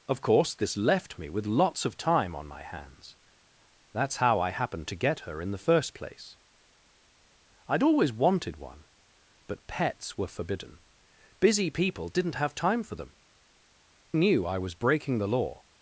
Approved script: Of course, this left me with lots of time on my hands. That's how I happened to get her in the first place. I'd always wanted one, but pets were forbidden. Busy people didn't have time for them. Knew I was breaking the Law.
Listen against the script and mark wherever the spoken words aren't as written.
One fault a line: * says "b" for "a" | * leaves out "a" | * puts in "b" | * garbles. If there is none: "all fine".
all fine